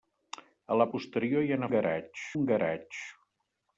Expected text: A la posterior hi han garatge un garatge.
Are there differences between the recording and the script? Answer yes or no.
no